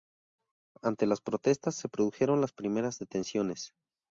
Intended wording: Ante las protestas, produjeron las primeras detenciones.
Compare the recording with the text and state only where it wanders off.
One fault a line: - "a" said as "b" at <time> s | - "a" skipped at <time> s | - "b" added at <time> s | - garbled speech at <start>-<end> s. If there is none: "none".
- "se" added at 1.8 s